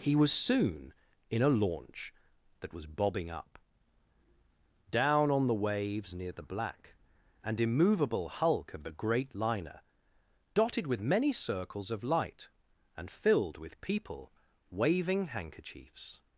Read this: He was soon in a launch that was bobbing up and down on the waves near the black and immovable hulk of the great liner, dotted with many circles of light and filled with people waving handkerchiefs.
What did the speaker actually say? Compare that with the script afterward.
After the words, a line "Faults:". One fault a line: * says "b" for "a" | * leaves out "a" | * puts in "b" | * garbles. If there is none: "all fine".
He was soon in a launch that was bobbing up down on the waves near the black and immovable hulk of the great liner, dotted with many circles of light and filled with people waving handkerchiefs.
Faults:
* leaves out "and"